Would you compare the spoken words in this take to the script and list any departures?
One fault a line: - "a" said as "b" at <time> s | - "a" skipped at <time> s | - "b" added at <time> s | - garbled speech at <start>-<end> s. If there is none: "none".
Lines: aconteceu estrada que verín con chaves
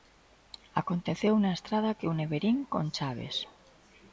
- "na" added at 1.4 s
- "une" added at 2.1 s